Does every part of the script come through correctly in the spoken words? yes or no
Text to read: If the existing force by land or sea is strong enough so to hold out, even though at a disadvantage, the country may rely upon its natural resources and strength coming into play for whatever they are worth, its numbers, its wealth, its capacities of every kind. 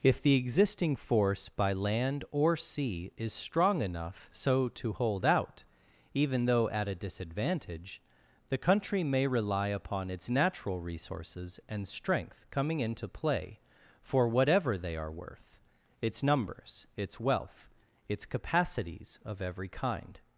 yes